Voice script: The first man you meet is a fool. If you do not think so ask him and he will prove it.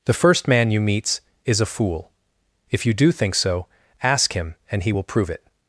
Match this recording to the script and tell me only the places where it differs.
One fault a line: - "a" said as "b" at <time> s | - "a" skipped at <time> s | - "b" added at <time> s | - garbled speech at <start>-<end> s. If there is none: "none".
- "meet" said as "meets" at 0.8 s
- "not" skipped at 3.1 s